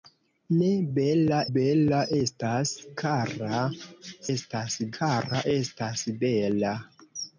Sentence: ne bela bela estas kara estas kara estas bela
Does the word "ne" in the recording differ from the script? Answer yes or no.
no